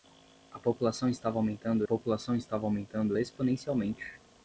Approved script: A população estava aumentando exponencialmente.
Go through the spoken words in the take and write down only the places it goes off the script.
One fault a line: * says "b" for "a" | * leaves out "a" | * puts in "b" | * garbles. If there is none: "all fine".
* puts in "população estava aumentando"